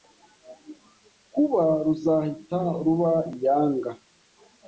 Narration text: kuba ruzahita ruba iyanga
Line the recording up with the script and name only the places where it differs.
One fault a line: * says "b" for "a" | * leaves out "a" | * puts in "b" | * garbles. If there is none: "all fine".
all fine